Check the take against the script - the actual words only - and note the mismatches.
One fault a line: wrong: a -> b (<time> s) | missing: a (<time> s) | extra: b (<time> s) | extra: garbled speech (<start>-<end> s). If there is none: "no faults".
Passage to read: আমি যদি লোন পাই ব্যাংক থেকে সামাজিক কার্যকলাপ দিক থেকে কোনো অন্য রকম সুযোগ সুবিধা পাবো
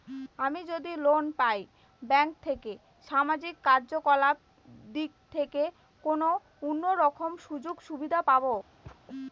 no faults